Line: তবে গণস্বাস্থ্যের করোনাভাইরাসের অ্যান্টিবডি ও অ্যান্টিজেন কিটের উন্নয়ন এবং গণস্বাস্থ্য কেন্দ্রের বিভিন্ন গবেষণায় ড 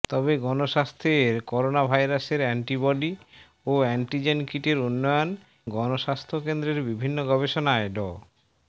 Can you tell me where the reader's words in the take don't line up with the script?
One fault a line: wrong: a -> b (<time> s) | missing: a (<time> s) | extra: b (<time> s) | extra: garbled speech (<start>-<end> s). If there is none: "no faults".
missing: এবং (5.3 s)